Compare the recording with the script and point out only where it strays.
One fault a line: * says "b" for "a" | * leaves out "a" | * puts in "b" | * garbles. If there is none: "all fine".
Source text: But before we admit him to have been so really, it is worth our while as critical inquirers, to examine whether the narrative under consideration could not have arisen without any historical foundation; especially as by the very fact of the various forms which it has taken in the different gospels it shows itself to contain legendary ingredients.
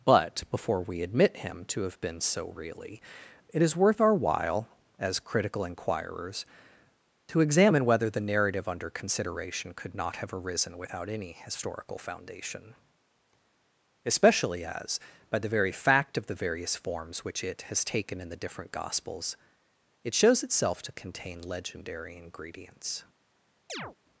all fine